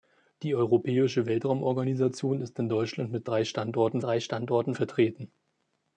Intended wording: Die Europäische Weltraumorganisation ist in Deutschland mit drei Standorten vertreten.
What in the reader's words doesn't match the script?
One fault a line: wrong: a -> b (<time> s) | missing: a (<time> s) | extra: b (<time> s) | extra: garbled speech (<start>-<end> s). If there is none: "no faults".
extra: drei Standorten (4.0 s)